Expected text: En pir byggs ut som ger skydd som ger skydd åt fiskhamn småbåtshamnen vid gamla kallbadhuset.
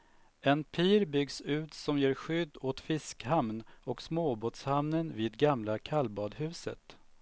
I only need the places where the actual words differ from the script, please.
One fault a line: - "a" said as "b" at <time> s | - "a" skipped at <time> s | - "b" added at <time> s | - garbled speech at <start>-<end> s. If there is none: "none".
- "som ger skydd" skipped at 2.6 s
- "och" added at 3.8 s